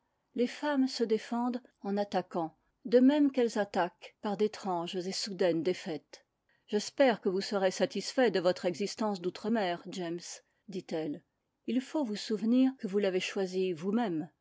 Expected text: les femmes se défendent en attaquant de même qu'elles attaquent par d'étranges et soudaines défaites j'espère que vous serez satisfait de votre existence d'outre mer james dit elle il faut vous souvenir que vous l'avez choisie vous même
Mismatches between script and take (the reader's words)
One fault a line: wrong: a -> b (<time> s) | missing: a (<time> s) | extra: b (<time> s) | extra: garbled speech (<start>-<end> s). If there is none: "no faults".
no faults